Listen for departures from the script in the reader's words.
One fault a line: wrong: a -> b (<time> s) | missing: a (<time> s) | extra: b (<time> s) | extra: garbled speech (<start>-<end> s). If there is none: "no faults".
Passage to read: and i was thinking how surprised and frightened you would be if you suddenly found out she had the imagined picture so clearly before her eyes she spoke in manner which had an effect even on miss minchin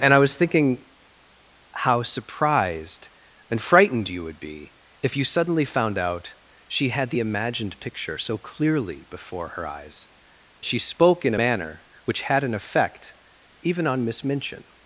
no faults